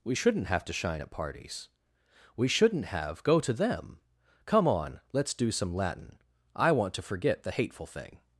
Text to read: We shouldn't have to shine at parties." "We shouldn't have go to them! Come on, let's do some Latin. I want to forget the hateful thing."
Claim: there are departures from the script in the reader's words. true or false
false